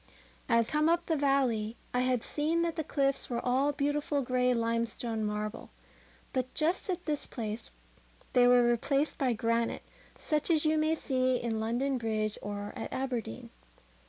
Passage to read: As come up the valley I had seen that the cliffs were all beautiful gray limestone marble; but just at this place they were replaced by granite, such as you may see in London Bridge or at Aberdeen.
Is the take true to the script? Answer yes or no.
yes